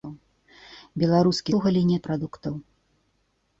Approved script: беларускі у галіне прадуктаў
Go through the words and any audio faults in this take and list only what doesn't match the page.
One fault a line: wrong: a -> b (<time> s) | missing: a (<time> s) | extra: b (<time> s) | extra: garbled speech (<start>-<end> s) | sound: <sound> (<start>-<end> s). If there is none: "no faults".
no faults